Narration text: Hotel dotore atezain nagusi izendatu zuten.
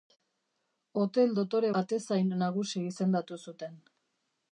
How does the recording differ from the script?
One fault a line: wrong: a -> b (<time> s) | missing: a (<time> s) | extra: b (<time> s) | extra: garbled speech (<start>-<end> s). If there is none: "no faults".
no faults